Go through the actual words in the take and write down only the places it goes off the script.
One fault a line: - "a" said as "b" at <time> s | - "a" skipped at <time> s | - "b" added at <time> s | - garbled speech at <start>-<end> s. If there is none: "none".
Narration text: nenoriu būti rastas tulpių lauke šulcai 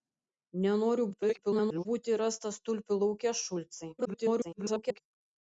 - garbled speech at 1.1-1.9 s
- garbled speech at 4.0-5.0 s